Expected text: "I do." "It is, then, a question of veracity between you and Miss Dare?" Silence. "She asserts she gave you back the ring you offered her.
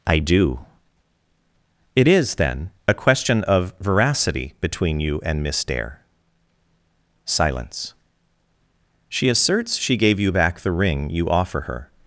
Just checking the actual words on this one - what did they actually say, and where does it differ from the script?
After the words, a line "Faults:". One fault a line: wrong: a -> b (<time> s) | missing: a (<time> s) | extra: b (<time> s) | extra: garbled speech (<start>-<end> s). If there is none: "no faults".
"I do." "It is, then, a question of veracity between you and Miss Dare?" Silence. "She asserts she gave you back the ring you offer her.
Faults:
wrong: offered -> offer (11.3 s)